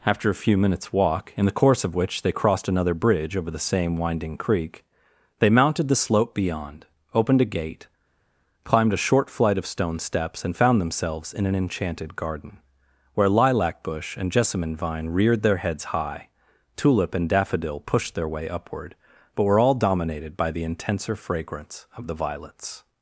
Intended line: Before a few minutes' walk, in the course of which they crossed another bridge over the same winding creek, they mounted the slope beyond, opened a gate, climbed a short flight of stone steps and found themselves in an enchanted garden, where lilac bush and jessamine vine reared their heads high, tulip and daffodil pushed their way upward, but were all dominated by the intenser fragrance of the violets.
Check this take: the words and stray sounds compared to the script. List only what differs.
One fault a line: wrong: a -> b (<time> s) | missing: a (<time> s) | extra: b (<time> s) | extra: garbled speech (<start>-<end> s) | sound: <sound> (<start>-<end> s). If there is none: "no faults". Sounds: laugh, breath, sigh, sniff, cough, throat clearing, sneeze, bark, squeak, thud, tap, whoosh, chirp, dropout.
wrong: Before -> After (0.0 s)